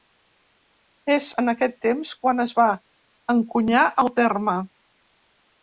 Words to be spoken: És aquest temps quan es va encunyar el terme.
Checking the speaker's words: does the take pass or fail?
fail